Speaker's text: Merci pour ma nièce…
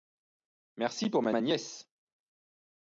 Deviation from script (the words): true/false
true